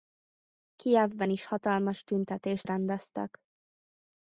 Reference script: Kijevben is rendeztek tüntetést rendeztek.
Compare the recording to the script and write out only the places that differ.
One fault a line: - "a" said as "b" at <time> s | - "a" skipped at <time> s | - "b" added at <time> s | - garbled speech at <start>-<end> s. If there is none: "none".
- "rendeztek" said as "hatalmas" at 1.4 s